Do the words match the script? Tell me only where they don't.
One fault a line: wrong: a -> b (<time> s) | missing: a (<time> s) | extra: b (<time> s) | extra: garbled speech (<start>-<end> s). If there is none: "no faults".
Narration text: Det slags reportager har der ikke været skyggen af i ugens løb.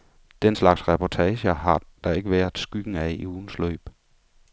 wrong: Det -> Den (0.4 s)